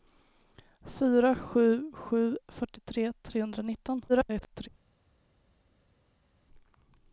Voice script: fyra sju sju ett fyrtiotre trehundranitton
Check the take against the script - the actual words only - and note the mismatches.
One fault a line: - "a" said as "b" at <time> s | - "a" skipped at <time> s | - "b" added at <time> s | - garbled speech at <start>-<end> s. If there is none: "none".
- "ett" skipped at 2.4 s
- garbled speech at 4.1-4.7 s